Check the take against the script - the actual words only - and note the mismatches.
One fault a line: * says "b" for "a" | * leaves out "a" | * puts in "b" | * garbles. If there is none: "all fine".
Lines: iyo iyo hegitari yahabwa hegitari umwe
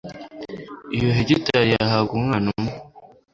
* leaves out "iyo"
* says "umwana" for "hegitari"